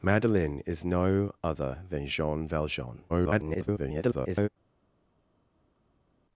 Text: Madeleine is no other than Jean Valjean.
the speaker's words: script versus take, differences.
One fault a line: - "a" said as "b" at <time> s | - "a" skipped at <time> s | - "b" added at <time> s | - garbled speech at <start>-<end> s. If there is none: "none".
- garbled speech at 3.1-4.5 s